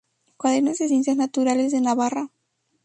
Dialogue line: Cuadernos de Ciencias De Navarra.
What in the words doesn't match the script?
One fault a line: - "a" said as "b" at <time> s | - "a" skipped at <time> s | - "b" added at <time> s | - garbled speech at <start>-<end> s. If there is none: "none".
- "Naturales" added at 1.2 s